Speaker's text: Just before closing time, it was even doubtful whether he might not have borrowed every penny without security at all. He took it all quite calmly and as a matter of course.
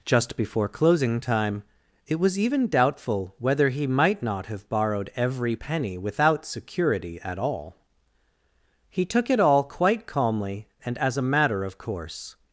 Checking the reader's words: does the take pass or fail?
pass